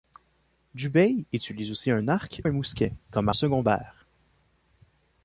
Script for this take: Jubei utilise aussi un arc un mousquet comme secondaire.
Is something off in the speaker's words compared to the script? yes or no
no